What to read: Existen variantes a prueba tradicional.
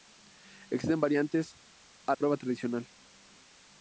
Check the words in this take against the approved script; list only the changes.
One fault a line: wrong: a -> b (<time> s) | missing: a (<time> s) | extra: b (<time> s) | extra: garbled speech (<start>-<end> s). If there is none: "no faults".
no faults